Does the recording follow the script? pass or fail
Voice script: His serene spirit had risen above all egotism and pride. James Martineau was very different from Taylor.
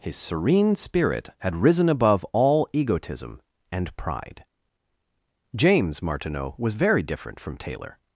pass